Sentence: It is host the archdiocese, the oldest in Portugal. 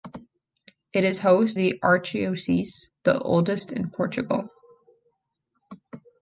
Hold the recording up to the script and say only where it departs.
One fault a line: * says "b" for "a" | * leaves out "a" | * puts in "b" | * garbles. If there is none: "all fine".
all fine